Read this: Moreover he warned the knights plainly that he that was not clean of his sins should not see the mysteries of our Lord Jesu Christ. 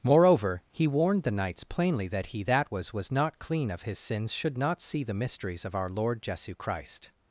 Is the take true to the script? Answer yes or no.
no